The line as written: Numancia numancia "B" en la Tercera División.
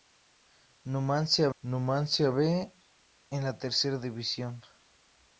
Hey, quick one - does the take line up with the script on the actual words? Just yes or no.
yes